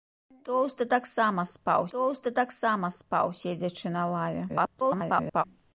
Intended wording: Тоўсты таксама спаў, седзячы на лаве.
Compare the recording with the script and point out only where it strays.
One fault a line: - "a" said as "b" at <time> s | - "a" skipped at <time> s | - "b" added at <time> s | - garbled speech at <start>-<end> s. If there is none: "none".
- "тоўсты таксама спаў" added at 1.9 s
- garbled speech at 4.5-5.4 s